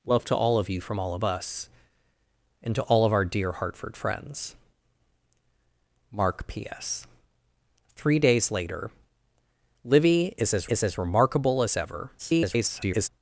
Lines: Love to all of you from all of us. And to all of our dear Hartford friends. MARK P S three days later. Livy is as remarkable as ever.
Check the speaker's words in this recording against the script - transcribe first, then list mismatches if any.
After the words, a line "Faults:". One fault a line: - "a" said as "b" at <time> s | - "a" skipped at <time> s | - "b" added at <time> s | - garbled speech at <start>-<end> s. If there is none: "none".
Love to all of you from all of us. And to all of our dear Hartford friends. MARK P S three days later. Livy is as is as remarkable as ever. [garbled]
Faults:
- "is as" added at 10.7 s
- garbled speech at 12.2-13.1 s